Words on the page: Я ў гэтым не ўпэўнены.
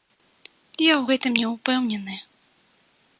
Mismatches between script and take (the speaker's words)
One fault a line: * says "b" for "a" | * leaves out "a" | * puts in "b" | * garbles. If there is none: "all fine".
all fine